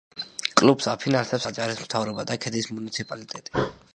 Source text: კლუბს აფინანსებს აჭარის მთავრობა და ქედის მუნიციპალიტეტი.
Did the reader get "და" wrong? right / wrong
right